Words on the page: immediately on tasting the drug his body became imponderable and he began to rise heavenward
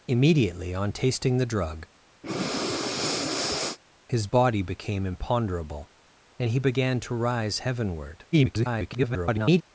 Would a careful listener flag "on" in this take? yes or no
no